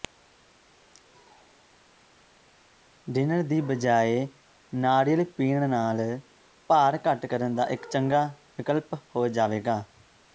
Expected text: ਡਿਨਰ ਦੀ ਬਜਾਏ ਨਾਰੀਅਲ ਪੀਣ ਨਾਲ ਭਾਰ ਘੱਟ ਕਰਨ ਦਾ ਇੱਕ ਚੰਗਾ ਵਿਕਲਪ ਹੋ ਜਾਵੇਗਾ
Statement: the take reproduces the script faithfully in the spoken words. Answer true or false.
true